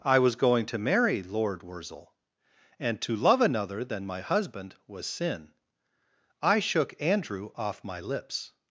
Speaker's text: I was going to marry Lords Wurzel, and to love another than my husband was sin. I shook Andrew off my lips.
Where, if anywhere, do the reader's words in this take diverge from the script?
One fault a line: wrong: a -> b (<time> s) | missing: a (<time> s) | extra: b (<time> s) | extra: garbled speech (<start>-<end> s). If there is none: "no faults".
wrong: Lords -> Lord (1.2 s)